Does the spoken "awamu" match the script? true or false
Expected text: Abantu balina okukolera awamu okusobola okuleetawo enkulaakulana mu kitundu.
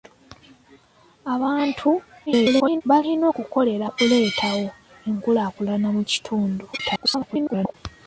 false